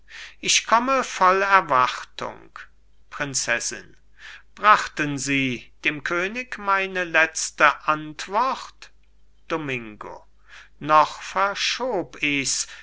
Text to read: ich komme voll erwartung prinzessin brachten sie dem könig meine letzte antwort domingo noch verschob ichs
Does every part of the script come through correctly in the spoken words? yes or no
yes